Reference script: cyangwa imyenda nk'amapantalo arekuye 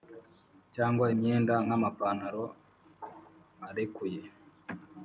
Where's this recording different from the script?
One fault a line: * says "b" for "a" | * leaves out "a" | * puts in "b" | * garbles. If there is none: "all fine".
all fine